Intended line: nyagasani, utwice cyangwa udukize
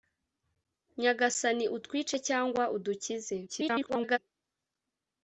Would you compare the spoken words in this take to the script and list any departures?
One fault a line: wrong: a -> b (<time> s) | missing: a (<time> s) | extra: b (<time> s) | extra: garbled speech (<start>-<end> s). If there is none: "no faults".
extra: garbled speech (3.5-4.2 s)